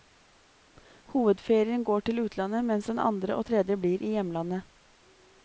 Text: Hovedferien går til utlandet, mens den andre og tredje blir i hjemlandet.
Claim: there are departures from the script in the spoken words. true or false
false